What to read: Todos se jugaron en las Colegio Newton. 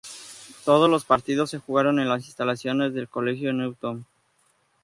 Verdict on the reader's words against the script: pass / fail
fail